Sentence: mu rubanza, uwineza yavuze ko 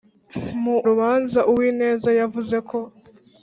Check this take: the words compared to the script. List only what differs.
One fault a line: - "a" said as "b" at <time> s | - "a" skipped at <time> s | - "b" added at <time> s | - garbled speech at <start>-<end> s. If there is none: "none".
none